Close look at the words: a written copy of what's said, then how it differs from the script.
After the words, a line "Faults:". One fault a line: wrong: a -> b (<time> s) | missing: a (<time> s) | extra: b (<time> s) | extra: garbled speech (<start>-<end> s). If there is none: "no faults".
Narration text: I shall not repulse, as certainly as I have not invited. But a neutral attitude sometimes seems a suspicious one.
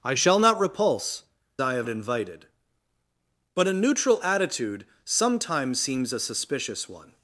I shall not repulse, I have invited. But a neutral attitude sometimes seems a suspicious one.
Faults:
missing: as certainly as (1.2 s)
missing: not (1.9 s)